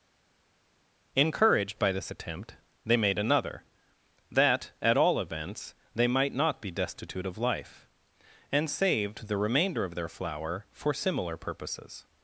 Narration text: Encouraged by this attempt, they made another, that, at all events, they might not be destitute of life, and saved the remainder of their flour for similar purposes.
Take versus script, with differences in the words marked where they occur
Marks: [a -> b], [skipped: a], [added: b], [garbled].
Encouraged by this attempt, they made another, that, at all events, they might not be destitute of life, and saved the remainder of their flour for similar purposes.